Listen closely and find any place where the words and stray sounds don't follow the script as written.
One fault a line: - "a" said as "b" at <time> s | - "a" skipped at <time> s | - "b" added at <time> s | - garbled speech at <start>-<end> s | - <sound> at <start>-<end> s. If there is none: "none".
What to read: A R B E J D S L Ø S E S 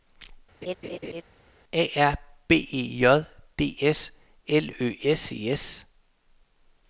- laugh at 0.6-1.2 s